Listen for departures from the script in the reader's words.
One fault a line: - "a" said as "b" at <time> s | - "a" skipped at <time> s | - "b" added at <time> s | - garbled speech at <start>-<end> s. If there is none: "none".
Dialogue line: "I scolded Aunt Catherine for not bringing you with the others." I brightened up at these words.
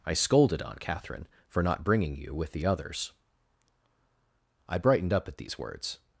none